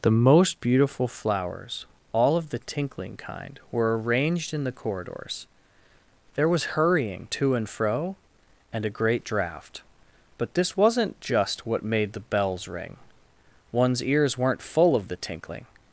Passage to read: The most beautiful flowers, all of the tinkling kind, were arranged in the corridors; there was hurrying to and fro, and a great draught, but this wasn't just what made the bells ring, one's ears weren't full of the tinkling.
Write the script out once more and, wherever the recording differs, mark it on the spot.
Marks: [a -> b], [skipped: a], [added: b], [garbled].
The most beautiful flowers, all of the tinkling kind, were arranged in the corridors; there was hurrying to and fro, and a great draught, but this wasn't just what made the bells ring, one's ears weren't full of the tinkling.